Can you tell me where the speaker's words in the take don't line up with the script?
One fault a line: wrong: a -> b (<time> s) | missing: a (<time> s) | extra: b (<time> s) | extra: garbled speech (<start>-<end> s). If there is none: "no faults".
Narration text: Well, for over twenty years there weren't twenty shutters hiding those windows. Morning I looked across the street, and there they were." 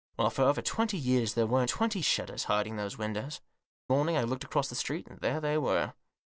no faults